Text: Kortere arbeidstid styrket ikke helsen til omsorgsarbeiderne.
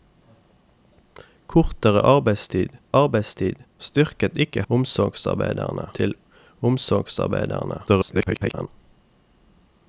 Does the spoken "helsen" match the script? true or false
false